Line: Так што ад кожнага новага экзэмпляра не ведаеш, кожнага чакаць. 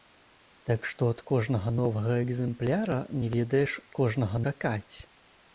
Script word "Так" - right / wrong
right